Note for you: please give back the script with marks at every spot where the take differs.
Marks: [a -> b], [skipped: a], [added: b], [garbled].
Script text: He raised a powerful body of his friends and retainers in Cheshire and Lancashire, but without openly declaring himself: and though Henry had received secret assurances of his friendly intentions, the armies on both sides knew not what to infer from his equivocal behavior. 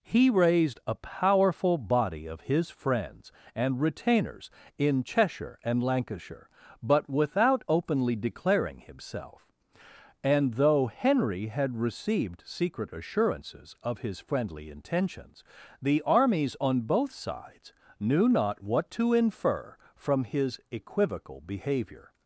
He raised a powerful body of his friends and retainers in Cheshire and Lancashire, but without openly declaring himself: and though Henry had received secret assurances of his friendly intentions, the armies on both sides knew not what to infer from his equivocal behavior.